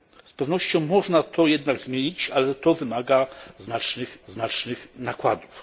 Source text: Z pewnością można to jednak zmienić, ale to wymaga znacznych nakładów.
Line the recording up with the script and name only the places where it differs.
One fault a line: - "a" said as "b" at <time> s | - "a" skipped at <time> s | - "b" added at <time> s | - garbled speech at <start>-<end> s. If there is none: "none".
- "znacznych" added at 4.3 s